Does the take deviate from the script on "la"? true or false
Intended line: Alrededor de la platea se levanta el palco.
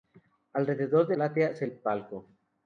true